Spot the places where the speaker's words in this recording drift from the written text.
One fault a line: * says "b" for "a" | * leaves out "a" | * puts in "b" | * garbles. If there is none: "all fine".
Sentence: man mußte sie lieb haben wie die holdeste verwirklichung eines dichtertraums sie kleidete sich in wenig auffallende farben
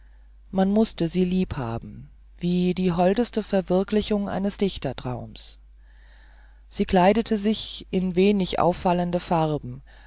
all fine